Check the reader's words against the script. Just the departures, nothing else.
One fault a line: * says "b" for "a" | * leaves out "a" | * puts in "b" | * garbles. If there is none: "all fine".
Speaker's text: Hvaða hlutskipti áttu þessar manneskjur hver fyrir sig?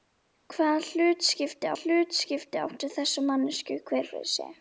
* puts in "hlutskipti"